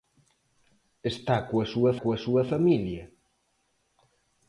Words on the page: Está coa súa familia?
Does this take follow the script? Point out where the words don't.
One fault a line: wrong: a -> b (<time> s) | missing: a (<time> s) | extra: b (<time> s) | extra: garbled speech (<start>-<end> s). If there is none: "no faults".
extra: coa súa (2.0 s)